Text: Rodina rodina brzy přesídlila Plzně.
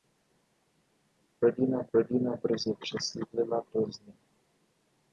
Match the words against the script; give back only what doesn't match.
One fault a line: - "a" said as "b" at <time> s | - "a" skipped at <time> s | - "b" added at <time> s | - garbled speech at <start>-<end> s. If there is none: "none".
none